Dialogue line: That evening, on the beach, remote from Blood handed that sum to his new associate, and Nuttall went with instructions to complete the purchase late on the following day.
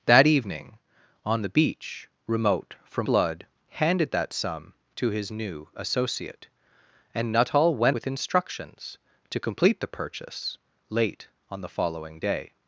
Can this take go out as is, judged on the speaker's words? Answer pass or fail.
pass